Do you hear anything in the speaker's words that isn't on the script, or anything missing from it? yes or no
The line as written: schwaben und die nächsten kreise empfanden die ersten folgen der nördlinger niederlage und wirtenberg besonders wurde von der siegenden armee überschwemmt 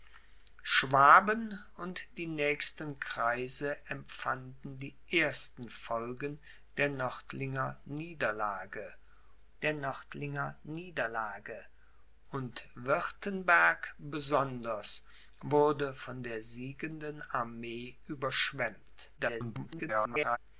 yes